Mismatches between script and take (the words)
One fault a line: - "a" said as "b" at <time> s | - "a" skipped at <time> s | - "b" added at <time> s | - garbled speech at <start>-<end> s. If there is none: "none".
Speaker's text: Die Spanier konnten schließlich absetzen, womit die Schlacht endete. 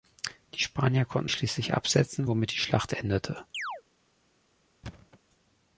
none